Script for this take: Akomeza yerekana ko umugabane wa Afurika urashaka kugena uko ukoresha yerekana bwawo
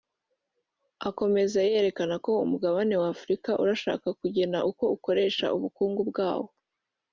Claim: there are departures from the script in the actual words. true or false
true